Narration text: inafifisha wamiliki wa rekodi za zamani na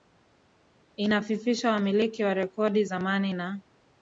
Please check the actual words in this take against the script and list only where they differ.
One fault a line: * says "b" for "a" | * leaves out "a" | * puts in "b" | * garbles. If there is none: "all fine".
* leaves out "za"